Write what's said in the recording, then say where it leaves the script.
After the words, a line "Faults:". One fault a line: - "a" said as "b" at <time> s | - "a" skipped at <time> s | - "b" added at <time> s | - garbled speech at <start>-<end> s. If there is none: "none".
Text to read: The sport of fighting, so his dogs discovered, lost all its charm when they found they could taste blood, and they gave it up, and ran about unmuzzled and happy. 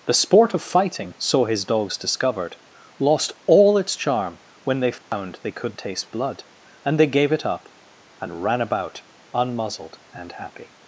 The sport of fighting, so his dogs discovered, lost all its charm when they found they could taste blood, and they gave it up, and ran about unmuzzled and happy.
Faults:
none